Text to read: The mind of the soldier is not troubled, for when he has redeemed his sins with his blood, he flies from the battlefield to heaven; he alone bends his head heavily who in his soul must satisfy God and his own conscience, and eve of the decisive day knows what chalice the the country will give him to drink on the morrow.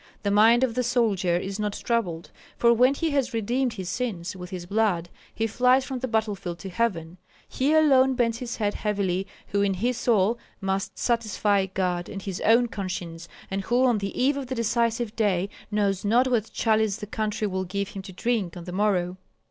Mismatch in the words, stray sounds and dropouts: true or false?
true